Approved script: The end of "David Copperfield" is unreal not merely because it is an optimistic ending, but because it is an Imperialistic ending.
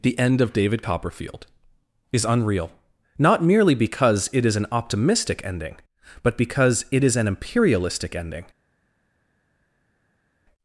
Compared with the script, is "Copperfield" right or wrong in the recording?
right